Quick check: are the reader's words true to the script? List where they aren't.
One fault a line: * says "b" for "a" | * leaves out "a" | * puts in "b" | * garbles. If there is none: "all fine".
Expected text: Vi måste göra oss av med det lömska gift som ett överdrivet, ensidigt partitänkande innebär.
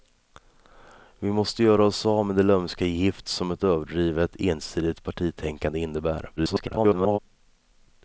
* garbles